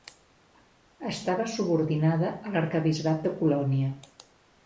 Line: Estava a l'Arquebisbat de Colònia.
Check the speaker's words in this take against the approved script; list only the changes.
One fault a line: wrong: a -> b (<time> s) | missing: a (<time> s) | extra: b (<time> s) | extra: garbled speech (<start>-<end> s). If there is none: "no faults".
extra: subordinada (1.6 s)